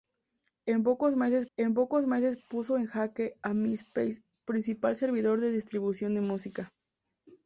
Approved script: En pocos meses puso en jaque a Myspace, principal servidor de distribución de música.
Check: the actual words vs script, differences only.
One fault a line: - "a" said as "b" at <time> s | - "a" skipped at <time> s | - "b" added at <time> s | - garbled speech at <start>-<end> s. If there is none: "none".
- "en pocos meses" added at 1.6 s